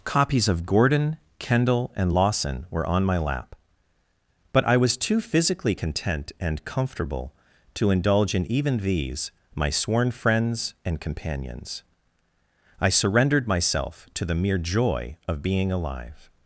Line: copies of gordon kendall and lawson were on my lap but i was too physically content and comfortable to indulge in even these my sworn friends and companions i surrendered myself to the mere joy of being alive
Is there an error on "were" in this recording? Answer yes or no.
no